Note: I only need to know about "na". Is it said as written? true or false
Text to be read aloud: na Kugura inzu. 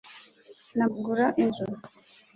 true